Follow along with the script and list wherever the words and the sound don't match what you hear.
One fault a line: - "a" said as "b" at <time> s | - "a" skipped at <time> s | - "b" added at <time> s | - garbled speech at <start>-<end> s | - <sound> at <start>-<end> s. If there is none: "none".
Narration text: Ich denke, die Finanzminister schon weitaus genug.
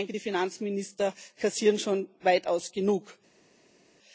- "kassieren" added at 1.4 s